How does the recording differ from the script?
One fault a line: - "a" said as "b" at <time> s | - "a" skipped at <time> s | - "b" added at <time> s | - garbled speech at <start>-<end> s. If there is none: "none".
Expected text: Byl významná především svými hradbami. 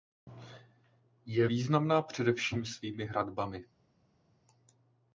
- "Byl" said as "Je" at 1.2 s